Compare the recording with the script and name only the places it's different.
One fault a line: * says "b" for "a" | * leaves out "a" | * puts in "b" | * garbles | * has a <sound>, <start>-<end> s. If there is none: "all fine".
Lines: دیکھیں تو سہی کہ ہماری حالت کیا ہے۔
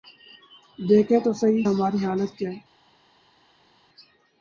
* leaves out "کہ"